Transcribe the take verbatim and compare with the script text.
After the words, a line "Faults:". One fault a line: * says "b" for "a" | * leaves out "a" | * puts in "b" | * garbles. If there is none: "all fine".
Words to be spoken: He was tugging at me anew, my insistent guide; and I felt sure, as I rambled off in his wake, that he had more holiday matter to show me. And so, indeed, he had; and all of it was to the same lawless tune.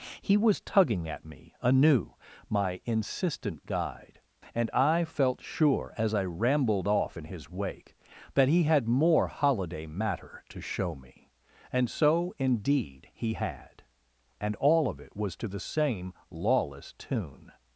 He was tugging at me anew, my insistent guide; and I felt sure, as I rambled off in his wake, that he had more holiday matter to show me. And so, indeed, he had; and all of it was to the same lawless tune.
Faults:
all fine